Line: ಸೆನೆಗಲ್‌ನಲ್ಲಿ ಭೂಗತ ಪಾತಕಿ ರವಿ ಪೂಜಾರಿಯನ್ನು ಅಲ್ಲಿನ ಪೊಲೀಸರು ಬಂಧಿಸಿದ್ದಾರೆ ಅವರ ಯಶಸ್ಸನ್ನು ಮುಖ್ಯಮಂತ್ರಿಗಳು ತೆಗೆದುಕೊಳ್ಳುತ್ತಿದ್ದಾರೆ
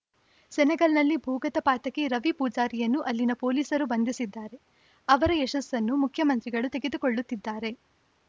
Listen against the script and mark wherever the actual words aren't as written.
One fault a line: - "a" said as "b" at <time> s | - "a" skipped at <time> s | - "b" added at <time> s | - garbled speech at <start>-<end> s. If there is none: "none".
none